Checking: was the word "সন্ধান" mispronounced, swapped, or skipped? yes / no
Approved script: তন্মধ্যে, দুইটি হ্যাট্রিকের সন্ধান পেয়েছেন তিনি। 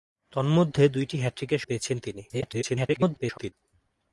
yes